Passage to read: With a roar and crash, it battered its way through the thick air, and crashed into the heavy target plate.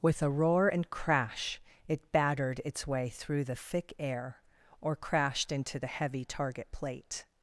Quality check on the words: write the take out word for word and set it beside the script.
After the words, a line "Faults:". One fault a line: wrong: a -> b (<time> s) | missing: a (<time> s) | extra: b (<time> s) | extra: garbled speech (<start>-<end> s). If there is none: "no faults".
With a roar and crash, it battered its way through the thick air, or crashed into the heavy target plate.
Faults:
wrong: and -> or (4.8 s)